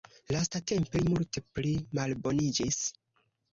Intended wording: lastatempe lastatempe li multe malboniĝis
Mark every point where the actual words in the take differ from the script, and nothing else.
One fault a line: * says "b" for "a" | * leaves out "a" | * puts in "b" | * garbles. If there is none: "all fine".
* leaves out "lastatempe"
* puts in "pli"